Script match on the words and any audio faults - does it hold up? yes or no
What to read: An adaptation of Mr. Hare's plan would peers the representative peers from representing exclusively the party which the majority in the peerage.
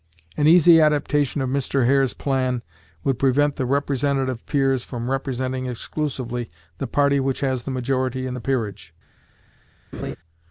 no